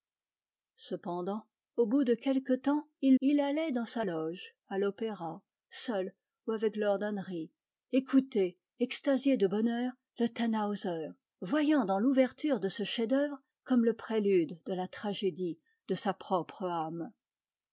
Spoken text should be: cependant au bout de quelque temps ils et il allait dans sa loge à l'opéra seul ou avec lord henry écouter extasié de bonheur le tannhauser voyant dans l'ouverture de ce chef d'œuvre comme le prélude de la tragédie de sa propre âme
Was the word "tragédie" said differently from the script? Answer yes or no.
no